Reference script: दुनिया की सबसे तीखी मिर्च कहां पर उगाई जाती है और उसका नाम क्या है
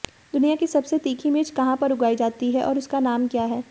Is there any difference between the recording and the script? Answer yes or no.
no